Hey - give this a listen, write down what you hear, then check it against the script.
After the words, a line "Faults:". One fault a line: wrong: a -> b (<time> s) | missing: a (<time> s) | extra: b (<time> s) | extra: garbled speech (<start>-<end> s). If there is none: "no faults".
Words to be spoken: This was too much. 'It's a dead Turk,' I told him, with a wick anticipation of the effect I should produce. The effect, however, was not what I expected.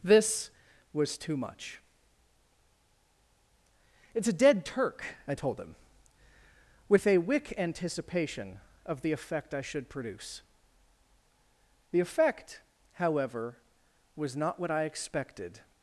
This was too much. 'It's a dead Turk,' I told him, with a wick anticipation of the effect I should produce. The effect, however, was not what I expected.
Faults:
no faults